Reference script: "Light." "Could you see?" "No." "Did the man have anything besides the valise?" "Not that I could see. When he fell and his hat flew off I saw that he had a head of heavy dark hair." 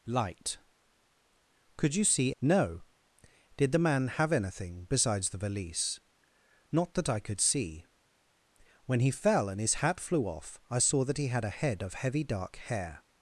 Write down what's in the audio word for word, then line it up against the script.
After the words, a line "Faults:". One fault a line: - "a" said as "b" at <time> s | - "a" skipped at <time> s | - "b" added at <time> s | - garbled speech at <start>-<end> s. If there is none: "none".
"Light." "Could you see?" "No." "Did the man have anything besides the valise?" "Not that I could see. When he fell and his hat flew off I saw that he had a head of heavy dark hair."
Faults:
none